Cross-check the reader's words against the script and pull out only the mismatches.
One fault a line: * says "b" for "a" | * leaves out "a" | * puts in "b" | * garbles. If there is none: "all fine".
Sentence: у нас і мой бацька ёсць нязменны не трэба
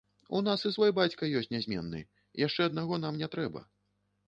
* says "свой" for "мой"
* puts in "яшчэ аднаго нам"